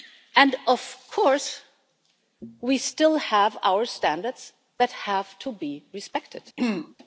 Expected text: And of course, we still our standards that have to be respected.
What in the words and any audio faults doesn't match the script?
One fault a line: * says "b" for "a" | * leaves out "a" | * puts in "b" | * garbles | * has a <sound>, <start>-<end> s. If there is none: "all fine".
* puts in "have"
* has a throat clearing, 6.6-7.0 s